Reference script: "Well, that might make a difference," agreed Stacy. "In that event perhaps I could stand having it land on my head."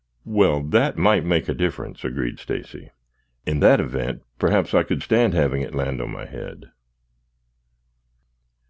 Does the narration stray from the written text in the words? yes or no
no